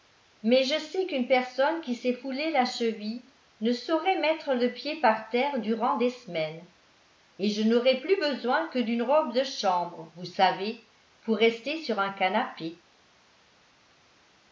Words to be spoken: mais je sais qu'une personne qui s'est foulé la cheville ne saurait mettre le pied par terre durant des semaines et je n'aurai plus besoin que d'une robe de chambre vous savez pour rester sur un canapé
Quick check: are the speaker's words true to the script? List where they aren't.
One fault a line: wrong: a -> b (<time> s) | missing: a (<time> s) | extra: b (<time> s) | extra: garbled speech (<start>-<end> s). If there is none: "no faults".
no faults